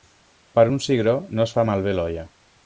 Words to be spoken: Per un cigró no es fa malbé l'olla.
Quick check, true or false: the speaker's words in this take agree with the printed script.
true